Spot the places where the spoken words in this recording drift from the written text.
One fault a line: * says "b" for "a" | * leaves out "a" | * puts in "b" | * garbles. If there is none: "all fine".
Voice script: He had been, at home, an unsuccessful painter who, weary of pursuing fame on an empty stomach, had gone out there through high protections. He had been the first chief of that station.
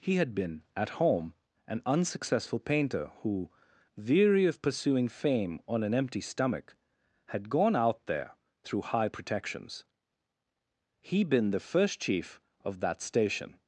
* leaves out "had"